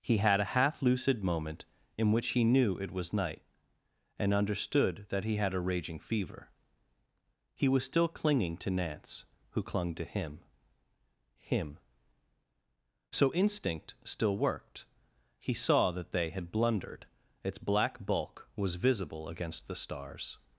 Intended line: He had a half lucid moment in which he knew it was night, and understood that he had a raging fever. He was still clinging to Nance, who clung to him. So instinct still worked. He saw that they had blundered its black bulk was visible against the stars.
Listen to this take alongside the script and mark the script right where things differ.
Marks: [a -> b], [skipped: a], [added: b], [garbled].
He had a half lucid moment in which he knew it was night, and understood that he had a raging fever. He was still clinging to Nance, who clung to him. [added: him] So instinct still worked. He saw that they had blundered its black bulk was visible against the stars.